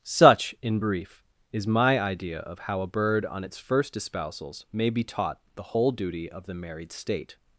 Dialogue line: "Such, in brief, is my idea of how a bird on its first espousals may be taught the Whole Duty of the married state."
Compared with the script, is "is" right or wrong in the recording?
right